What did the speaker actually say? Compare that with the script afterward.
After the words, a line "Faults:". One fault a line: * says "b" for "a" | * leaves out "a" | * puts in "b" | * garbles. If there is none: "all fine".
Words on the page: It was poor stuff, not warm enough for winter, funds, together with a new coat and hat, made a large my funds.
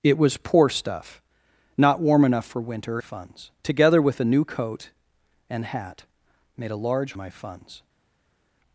It was poor stuff, not warm enough for winter, funds, together with a new coat and hat, made a large my funds.
Faults:
all fine